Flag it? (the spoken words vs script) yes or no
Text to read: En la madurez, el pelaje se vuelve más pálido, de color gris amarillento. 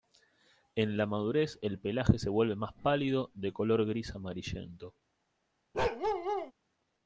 no